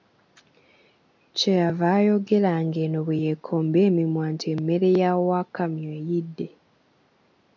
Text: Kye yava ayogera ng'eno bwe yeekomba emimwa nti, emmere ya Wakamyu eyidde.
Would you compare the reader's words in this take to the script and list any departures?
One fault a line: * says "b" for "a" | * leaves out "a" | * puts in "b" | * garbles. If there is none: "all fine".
all fine